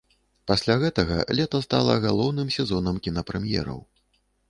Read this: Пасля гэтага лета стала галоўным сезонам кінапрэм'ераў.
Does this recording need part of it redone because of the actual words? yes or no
no